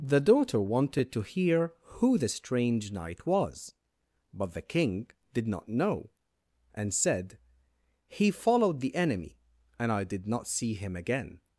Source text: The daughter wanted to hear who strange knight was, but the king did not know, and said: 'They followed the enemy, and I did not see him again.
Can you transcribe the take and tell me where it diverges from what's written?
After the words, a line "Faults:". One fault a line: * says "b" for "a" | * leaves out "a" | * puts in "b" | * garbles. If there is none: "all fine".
The daughter wanted to hear who the strange knight was, but the king did not know, and said: 'He followed the enemy, and I did not see him again.
Faults:
* puts in "the"
* says "He" for "They"